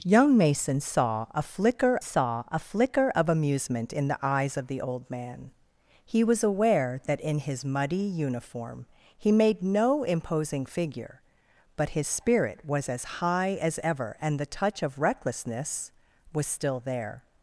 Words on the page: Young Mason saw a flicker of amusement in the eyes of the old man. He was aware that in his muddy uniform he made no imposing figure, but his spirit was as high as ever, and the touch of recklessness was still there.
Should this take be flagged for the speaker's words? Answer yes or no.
yes